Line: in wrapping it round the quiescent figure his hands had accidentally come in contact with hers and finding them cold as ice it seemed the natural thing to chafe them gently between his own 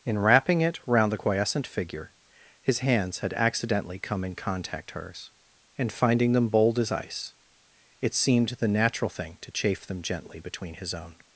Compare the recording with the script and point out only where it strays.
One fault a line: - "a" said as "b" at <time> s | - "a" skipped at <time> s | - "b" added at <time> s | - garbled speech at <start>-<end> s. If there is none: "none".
- "with" skipped at 4.9 s
- "cold" said as "bold" at 6.5 s